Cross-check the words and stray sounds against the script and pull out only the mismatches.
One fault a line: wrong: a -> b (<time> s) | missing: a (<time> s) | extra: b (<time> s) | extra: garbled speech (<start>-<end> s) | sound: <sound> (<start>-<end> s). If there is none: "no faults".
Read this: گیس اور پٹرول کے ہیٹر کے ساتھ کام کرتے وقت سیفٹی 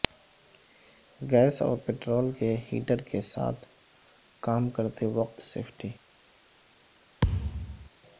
sound: thud (7.2-7.9 s)